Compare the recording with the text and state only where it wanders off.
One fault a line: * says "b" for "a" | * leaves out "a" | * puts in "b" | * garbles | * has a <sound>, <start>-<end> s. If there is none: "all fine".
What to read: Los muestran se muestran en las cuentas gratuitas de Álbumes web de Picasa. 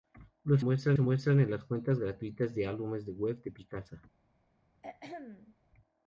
* has a throat clearing, 4.8-5.5 s